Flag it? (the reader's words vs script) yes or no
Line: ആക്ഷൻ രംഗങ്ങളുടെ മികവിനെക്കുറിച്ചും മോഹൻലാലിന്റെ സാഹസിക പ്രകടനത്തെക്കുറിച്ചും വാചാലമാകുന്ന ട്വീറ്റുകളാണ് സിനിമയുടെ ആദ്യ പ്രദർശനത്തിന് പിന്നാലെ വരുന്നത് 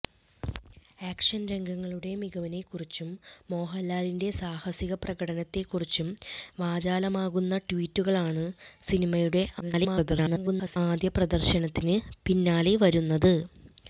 yes